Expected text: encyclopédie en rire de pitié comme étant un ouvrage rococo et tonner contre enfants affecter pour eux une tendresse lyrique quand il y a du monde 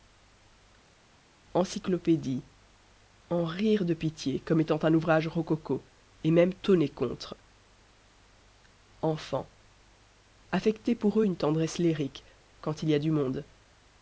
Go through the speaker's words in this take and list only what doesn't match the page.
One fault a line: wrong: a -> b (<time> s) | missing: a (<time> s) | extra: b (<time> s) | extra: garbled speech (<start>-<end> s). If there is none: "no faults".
extra: même (6.3 s)